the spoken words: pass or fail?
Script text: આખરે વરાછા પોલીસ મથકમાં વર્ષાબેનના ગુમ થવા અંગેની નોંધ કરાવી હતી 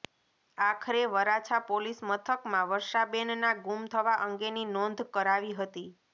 pass